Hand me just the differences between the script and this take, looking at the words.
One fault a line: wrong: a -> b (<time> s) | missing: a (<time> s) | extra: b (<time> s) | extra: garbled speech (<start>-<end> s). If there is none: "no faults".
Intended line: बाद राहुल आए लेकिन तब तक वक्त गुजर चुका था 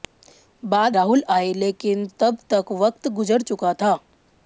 no faults